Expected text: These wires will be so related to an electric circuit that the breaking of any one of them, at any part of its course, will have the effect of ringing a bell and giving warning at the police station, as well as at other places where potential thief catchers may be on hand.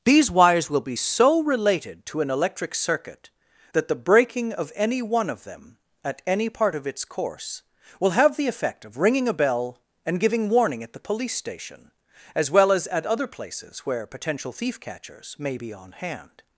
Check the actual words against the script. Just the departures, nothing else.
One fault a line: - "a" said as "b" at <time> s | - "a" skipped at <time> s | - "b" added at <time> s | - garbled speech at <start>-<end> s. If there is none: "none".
none